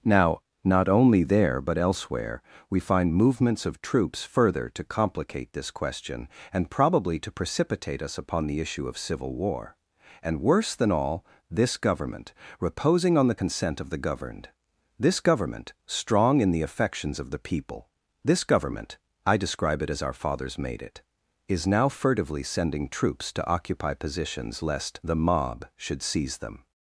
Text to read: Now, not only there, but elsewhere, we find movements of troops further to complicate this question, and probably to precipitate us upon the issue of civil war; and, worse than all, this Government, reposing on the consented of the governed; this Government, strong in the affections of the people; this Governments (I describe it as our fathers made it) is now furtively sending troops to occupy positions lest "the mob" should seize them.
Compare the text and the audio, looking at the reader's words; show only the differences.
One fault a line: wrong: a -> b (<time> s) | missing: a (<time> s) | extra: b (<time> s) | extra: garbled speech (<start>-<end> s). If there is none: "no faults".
wrong: consented -> consent (13.3 s)
wrong: Governments -> Government (18.4 s)